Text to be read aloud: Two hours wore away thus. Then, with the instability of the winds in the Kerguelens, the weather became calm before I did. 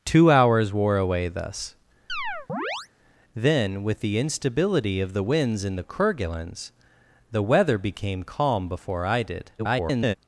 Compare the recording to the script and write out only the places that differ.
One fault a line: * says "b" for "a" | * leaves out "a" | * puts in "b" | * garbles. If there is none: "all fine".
* garbles